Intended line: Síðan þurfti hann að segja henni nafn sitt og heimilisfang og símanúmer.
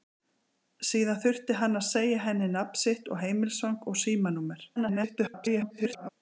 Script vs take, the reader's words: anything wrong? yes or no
yes